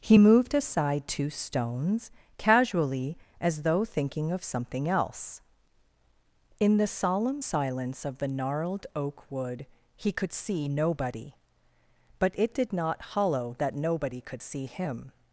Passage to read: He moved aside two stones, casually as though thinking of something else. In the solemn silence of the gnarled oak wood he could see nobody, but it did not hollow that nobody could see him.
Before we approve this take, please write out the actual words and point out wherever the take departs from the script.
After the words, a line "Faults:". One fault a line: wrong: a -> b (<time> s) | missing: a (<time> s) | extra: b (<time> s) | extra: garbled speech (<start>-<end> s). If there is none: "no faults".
He moved aside two stones, casually as though thinking of something else. In the solemn silence of the gnarled oak wood he could see nobody, but it did not hollow that nobody could see him.
Faults:
no faults